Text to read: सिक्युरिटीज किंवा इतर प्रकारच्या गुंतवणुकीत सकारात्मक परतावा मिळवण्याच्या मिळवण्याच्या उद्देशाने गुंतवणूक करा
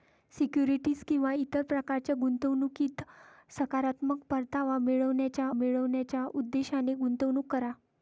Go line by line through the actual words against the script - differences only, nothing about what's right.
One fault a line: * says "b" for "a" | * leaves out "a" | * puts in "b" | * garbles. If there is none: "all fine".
all fine